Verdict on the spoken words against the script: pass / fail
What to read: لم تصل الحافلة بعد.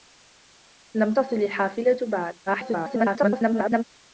fail